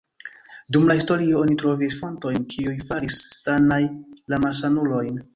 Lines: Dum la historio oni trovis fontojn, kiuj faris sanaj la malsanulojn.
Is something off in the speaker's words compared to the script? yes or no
no